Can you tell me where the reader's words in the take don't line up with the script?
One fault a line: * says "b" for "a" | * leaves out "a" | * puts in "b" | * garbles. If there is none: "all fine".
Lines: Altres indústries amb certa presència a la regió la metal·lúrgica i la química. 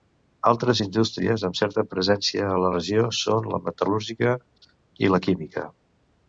* puts in "són"